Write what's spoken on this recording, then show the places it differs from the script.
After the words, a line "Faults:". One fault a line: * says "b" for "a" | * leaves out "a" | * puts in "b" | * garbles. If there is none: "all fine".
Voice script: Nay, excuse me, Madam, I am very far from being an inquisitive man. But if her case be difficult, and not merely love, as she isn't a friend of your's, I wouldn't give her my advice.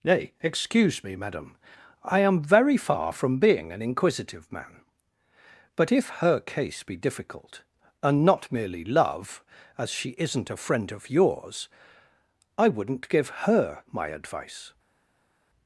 Nay, excuse me, Madam, I am very far from being an inquisitive man. But if her case be difficult, and not merely love, as she isn't a friend of your's, I wouldn't give her my advice.
Faults:
all fine